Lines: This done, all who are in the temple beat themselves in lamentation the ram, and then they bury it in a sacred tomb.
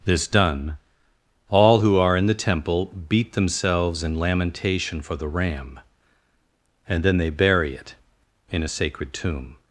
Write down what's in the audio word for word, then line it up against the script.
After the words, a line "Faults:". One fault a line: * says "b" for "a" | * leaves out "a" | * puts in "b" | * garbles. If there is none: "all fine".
This done, all who are in the temple beat themselves in lamentation for the ram, and then they bury it in a sacred tomb.
Faults:
* puts in "for"